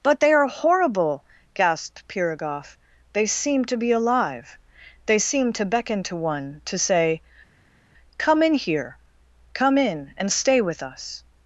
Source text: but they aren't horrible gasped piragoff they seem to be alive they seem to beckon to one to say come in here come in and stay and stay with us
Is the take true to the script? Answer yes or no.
no